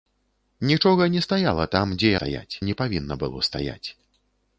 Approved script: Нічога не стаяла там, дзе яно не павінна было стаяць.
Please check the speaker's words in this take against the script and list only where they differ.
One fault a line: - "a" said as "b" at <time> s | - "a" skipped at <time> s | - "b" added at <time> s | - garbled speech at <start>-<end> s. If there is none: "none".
- "яно" said as "стаяць" at 2.2 s